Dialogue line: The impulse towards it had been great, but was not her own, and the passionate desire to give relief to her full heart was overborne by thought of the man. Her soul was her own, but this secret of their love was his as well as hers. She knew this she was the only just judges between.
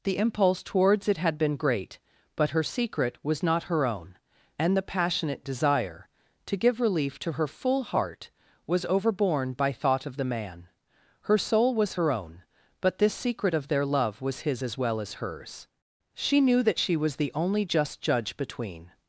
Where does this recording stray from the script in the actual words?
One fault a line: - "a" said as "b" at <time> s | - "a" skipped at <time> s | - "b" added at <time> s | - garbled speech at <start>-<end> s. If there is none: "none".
- "her secret" added at 2.5 s
- "this" said as "that" at 16.6 s
- "judges" said as "judge" at 18.0 s